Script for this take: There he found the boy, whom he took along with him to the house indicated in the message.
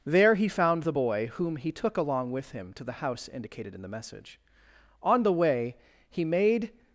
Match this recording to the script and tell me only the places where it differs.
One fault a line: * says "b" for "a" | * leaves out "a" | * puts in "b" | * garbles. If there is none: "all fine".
* puts in "On the way he made"